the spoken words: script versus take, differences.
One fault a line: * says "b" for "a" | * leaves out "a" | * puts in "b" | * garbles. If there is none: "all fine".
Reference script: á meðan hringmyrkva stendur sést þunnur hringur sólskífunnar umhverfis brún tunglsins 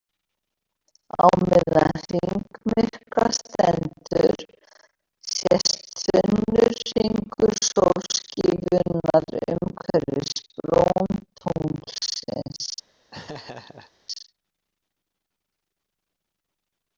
all fine